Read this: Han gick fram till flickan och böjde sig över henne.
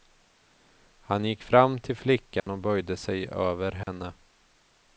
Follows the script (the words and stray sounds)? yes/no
no